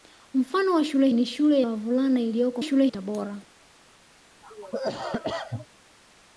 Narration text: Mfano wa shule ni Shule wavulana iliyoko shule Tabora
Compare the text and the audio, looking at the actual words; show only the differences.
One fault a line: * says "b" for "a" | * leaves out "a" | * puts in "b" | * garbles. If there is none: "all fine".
all fine